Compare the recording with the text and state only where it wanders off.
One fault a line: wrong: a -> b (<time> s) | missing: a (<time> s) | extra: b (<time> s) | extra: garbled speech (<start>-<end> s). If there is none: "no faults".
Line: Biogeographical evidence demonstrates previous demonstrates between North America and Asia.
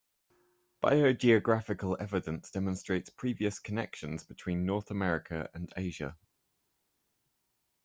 wrong: demonstrates -> connections (3.6 s)